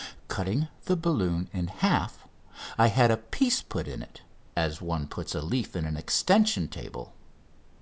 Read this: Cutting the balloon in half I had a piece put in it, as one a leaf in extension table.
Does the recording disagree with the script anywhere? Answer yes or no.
yes